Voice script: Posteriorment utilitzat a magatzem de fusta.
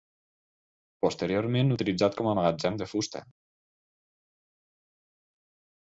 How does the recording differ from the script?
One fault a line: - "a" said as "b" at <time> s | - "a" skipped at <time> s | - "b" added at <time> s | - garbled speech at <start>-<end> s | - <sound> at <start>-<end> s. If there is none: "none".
- "com" added at 2.2 s